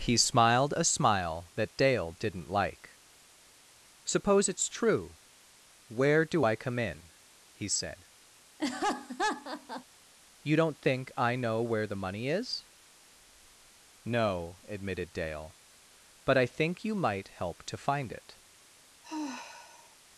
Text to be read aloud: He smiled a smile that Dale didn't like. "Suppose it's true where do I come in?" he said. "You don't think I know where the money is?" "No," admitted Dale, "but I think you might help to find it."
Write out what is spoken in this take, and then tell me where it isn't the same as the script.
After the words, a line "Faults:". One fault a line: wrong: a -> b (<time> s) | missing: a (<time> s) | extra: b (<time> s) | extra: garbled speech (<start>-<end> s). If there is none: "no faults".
He smiled a smile that Dale didn't like. "Suppose it's true where do I come in?" he said. "You don't think I know where the money is?" "No," admitted Dale, "but I think you might help to find it."
Faults:
no faults